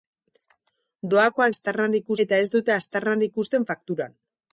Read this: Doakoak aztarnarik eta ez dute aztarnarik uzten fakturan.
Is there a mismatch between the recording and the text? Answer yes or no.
no